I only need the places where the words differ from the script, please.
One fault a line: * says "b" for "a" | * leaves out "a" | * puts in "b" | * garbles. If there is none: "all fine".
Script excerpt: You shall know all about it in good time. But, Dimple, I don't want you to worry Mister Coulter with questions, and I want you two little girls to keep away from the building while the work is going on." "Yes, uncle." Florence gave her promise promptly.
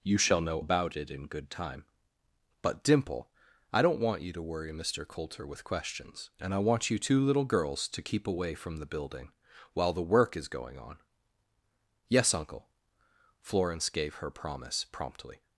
* leaves out "all"